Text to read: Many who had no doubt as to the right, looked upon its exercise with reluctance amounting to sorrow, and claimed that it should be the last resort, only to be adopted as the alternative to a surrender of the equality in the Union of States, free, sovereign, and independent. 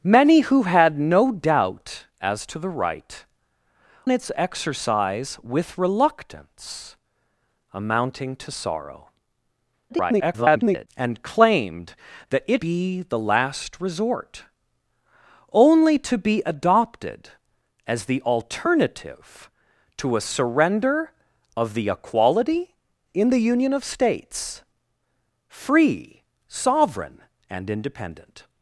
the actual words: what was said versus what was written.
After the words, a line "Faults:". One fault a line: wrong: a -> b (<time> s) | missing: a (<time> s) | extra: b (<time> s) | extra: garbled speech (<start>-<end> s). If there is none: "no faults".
Many who had no doubt as to the right, its exercise with reluctance amounting to sorrow, [garbled] and claimed that it be the last resort, only to be adopted as the alternative to a surrender of the equality in the Union of States, free, sovereign, and independent.
Faults:
missing: looked upon (3.2 s)
extra: garbled speech (9.9-10.9 s)
missing: should (12.6 s)